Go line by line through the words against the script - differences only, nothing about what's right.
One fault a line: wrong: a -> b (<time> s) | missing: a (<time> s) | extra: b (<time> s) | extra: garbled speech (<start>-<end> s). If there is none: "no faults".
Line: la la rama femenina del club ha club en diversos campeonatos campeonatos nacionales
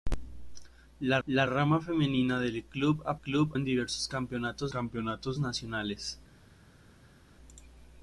no faults